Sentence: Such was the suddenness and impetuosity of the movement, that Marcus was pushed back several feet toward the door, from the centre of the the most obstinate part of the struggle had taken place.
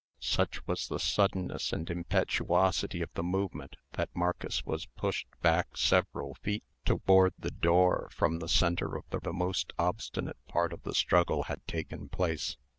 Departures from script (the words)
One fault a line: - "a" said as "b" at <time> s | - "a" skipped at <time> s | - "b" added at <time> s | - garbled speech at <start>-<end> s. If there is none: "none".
none